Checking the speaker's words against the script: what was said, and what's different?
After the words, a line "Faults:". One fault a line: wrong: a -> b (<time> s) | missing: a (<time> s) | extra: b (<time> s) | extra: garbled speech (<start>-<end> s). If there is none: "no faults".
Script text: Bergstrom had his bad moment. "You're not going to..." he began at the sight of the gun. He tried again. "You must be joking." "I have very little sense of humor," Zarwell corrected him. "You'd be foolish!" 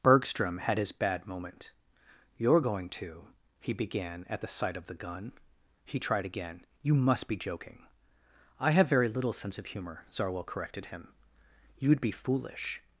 Bergstrom had his bad moment. "You're going to..." he began at the sight of the gun. He tried again. "You must be joking." "I have very little sense of humor," Zarwell corrected him. "You'd be foolish!"
Faults:
missing: not (2.6 s)